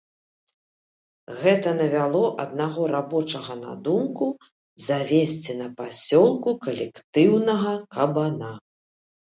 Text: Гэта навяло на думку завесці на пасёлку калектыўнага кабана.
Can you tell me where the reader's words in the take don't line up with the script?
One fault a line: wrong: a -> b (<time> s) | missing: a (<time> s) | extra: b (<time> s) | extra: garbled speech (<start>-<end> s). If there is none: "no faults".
extra: аднаго рабочага (2.5 s)